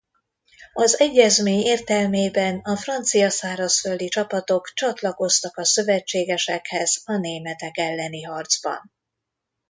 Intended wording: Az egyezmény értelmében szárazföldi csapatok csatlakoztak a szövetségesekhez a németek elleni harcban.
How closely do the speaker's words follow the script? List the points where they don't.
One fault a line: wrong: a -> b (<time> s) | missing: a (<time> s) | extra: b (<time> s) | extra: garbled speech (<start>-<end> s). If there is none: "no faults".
extra: a francia (2.6 s)